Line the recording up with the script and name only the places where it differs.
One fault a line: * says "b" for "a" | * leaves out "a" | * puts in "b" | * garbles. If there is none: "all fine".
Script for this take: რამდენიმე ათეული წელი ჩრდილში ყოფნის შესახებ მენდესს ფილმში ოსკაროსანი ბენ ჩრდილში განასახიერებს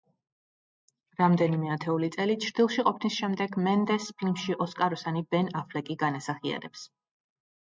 * says "შემდეგ" for "შესახებ"
* says "აფლეკი" for "ჩრდილში"